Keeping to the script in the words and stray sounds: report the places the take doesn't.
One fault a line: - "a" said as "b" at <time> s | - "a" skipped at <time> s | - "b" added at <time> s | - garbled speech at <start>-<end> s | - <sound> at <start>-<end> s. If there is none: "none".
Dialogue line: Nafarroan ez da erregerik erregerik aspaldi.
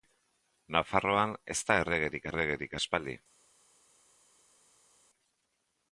none